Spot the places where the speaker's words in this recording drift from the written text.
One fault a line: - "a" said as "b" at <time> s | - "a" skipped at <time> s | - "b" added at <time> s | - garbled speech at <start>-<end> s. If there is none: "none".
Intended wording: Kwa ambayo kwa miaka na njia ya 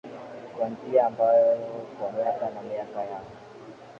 - "njia" added at 0.7 s
- "njia" said as "miaka" at 2.6 s